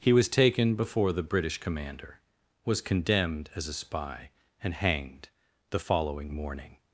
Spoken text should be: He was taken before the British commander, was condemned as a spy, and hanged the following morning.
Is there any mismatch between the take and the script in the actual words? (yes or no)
no